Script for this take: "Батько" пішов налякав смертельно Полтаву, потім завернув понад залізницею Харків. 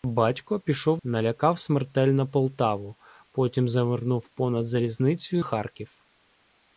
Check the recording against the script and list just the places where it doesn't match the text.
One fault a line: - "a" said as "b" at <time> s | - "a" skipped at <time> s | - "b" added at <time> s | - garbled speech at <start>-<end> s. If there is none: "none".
none